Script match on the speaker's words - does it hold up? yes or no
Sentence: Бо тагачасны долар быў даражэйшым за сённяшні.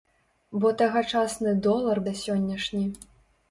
no